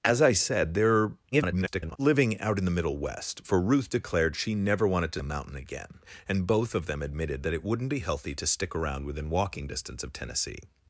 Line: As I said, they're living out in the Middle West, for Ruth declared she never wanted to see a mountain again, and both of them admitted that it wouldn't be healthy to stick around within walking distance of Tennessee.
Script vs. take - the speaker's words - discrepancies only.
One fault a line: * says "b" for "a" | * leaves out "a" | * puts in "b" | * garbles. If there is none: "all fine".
* garbles
* leaves out "see"